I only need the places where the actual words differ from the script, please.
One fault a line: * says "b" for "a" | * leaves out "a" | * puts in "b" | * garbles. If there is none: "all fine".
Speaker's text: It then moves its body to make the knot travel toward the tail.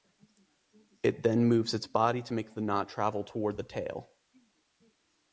all fine